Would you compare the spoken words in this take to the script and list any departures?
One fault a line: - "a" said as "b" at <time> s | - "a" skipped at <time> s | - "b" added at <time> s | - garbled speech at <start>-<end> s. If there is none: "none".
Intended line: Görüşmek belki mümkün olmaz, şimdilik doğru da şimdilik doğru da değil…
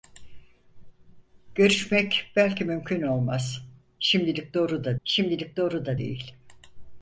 none